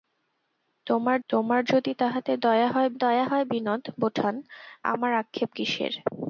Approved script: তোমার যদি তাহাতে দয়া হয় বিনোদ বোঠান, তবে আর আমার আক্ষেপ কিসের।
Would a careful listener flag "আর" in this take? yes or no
yes